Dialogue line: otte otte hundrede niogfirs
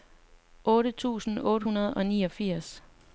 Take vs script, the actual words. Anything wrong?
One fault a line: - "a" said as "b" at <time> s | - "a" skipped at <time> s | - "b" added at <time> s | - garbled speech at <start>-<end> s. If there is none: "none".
- "tusind" added at 0.9 s
- "og" added at 1.9 s